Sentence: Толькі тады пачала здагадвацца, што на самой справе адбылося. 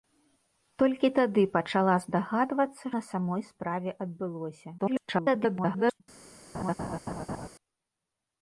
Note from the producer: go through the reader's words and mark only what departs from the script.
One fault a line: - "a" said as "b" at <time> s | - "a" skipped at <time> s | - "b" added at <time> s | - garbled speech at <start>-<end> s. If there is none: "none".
- "што" skipped at 2.9 s
- garbled speech at 4.8-6.0 s